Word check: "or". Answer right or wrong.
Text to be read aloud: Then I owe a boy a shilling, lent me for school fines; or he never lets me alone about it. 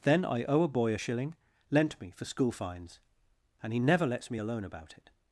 wrong